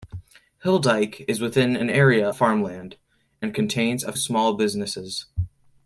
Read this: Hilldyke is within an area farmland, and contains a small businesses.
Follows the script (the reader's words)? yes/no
yes